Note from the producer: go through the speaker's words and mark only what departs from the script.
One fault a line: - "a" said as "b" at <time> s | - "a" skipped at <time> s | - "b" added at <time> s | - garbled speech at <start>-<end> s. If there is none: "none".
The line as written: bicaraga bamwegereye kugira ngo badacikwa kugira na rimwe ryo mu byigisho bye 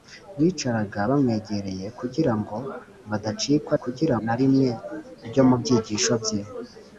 none